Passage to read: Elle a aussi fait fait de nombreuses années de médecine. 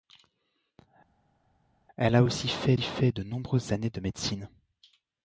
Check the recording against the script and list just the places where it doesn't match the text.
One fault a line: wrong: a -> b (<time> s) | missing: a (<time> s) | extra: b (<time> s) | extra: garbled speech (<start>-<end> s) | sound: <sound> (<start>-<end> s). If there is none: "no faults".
no faults